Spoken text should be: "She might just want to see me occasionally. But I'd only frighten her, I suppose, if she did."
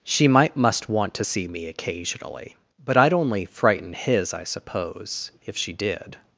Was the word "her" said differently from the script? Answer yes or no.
yes